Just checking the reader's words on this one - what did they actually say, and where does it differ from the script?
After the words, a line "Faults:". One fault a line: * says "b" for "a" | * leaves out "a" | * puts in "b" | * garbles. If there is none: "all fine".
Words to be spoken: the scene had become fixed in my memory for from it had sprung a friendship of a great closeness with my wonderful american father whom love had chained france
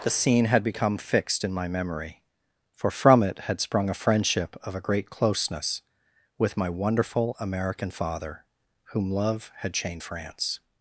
the scene had become fixed in my memory for from it had sprung a friendship of a great closeness with my wonderful american father whom love had chained france
Faults:
all fine